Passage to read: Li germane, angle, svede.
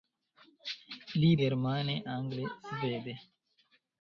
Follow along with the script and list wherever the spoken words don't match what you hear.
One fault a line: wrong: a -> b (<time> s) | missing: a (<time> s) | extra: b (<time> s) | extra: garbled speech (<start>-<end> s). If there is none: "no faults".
no faults